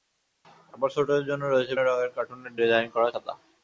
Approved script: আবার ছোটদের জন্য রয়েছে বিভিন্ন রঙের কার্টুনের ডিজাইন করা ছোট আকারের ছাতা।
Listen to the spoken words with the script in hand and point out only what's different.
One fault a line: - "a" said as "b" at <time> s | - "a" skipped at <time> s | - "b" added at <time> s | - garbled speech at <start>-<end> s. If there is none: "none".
- "বিভিন্ন" skipped at 1.7 s
- "ছোট আকারের" skipped at 3.1 s